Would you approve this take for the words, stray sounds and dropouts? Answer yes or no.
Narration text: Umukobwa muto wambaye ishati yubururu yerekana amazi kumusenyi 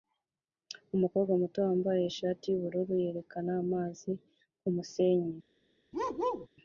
no